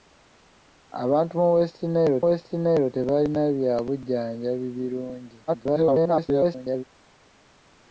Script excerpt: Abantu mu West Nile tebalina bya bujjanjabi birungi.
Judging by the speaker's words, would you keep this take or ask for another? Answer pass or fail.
fail